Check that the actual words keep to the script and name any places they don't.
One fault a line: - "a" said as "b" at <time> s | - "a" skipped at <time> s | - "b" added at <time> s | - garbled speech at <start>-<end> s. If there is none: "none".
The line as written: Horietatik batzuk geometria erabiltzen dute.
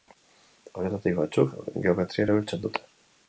none